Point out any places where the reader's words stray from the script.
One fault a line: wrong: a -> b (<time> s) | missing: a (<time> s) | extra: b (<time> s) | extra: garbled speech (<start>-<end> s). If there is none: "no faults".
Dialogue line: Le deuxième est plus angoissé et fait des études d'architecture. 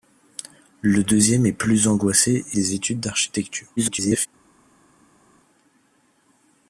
missing: fait (2.6 s)
extra: garbled speech (3.8-4.3 s)